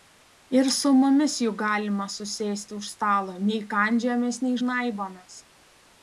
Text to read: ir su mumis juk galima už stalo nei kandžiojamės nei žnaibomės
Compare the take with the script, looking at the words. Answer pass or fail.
fail